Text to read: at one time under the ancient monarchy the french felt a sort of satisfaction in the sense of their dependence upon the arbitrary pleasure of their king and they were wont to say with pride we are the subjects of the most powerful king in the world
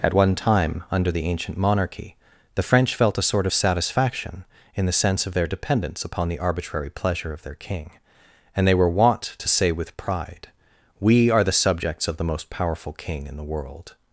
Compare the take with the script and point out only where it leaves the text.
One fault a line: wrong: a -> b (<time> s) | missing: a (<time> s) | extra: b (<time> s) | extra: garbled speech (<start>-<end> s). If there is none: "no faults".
no faults